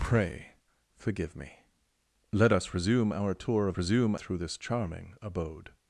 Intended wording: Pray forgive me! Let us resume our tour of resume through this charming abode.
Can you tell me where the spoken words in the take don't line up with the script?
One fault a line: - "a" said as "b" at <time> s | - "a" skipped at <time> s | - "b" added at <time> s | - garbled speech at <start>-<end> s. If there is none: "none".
none